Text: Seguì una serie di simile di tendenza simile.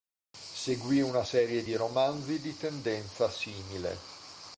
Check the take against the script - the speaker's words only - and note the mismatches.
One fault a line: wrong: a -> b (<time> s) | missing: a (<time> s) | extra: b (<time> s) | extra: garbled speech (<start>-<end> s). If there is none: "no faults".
wrong: simile -> romanzi (1.8 s)